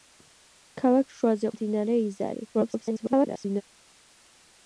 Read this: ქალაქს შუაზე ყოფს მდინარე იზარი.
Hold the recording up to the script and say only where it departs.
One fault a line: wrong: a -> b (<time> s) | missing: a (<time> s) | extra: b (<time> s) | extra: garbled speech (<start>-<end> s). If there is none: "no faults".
missing: ყოფს (1.5 s)
extra: garbled speech (2.5-3.6 s)